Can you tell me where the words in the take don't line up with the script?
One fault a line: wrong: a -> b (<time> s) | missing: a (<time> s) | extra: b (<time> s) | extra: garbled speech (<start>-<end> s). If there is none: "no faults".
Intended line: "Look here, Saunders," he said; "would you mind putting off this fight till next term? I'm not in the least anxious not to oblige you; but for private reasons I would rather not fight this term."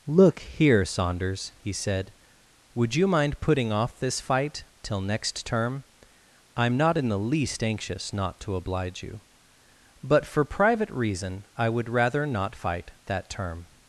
wrong: reasons -> reason (10.9 s)
wrong: this -> that (13.0 s)